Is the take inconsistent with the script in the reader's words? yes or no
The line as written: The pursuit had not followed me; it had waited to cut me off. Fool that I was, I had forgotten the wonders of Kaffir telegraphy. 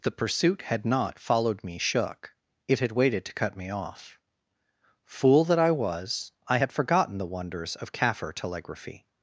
yes